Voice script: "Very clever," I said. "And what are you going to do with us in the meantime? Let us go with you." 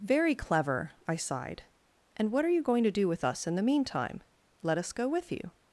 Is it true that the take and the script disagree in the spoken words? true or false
true